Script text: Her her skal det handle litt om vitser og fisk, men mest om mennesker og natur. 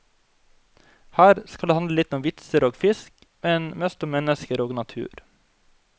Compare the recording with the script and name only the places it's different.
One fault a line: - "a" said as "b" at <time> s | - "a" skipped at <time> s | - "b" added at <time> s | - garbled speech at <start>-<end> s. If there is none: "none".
- "her" skipped at 1.4 s